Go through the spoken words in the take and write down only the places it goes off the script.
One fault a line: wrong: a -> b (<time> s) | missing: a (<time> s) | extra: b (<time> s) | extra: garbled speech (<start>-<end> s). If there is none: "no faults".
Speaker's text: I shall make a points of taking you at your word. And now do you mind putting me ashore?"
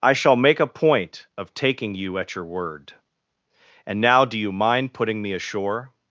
wrong: points -> point (0.7 s)